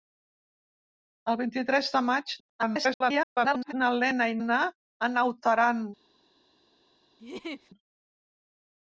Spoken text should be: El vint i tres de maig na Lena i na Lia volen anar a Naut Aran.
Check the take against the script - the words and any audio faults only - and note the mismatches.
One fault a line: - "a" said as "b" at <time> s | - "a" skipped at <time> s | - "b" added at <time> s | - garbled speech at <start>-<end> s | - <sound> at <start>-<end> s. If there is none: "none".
- garbled speech at 2.4-3.7 s
- "na Lia volen" skipped at 4.4 s
- laugh at 7.2-7.7 s